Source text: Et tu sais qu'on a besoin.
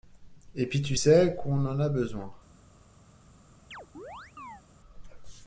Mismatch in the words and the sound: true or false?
true